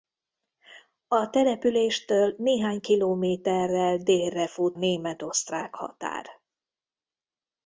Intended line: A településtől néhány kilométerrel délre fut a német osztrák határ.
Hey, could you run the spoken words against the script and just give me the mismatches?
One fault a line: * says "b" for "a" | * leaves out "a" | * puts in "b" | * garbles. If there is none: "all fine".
* leaves out "a"